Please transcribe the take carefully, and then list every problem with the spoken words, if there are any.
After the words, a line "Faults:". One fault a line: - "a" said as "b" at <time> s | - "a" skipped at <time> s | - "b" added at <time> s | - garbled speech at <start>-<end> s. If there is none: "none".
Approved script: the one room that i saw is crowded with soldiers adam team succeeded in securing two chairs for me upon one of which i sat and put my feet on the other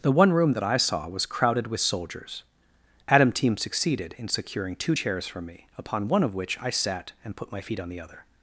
the one room that i saw was crowded with soldiers adam team succeeded in securing two chairs for me upon one of which i sat and put my feet on the other
Faults:
- "is" said as "was" at 1.1 s